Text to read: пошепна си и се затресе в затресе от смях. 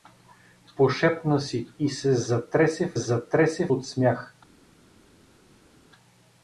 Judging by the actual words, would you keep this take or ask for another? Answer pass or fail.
pass